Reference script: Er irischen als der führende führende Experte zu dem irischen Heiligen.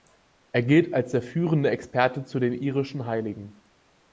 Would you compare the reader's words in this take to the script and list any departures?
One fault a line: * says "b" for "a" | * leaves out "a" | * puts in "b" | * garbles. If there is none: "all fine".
* says "gilt" for "irischen"
* leaves out "führende"
* says "den" for "dem"